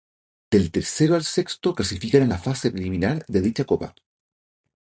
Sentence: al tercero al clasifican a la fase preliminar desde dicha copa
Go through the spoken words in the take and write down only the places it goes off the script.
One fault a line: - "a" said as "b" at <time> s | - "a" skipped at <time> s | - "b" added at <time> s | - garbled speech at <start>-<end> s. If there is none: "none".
- "al" said as "del" at 0.5 s
- "sexto" added at 1.2 s
- "desde" said as "de" at 3.3 s